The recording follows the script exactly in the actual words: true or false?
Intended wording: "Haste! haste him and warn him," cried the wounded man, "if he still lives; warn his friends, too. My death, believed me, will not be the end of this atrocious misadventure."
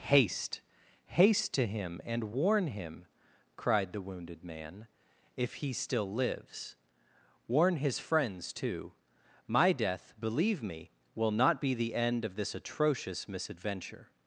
false